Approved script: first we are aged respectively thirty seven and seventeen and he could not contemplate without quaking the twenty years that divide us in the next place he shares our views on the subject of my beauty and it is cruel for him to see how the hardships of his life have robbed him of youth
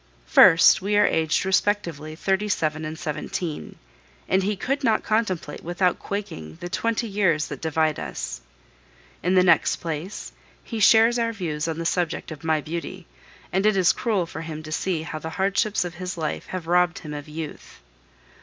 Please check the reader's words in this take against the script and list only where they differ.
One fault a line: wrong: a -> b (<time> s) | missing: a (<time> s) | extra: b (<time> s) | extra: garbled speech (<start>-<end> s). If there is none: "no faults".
no faults